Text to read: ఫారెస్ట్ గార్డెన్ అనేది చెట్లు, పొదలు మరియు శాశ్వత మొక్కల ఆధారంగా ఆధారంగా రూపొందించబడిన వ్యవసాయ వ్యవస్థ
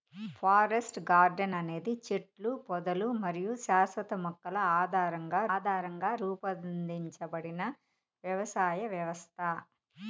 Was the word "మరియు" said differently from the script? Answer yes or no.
no